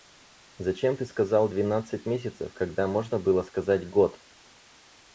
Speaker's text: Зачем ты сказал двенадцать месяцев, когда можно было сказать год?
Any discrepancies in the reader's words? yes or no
no